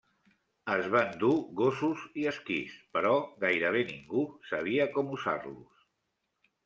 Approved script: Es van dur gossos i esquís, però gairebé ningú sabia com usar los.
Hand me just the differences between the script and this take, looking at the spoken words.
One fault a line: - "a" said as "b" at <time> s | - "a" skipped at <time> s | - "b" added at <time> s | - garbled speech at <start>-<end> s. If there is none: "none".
none